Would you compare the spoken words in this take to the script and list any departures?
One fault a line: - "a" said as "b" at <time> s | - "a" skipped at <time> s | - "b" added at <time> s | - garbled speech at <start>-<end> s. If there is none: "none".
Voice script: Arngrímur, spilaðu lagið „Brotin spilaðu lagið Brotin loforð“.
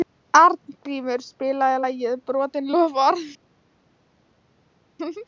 - "spilaðu lagið Brotin" skipped at 2.7 s